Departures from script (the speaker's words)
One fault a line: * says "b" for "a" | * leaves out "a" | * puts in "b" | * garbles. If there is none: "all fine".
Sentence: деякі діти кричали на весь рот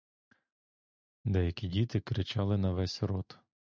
all fine